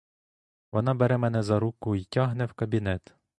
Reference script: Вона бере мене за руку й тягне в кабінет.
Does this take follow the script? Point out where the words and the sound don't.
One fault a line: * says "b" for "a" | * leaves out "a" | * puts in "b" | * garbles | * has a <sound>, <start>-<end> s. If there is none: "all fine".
all fine